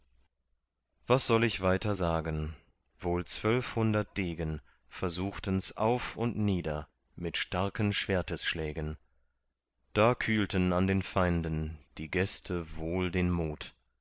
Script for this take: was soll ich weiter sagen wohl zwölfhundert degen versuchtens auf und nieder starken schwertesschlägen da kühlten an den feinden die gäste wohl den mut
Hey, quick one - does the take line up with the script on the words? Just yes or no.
no